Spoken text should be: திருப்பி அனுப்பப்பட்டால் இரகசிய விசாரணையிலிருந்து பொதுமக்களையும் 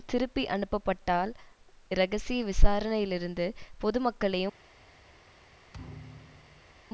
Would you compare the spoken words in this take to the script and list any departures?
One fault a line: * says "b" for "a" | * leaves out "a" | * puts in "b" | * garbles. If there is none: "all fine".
all fine